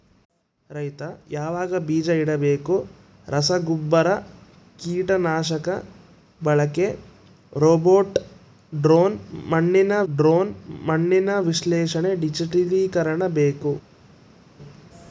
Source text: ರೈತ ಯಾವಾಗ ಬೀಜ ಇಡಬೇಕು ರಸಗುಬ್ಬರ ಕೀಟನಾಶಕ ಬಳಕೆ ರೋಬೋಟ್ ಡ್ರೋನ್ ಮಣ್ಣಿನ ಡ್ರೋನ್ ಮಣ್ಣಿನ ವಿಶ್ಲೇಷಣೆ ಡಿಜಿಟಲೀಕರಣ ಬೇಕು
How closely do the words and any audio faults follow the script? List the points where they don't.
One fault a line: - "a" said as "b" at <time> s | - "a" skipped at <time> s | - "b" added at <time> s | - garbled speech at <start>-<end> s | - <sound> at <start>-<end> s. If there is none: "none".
none